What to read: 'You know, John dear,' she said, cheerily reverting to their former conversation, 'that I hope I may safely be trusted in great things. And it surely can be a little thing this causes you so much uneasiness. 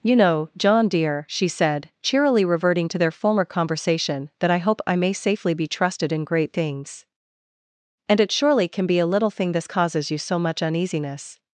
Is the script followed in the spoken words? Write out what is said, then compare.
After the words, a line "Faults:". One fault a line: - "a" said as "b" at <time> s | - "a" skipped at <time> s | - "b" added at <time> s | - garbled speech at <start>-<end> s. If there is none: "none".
'You know, John dear,' she said, cheerily reverting to their former conversation, 'that I hope I may safely be trusted in great things. And it surely can be a little thing this causes you so much uneasiness.
Faults:
none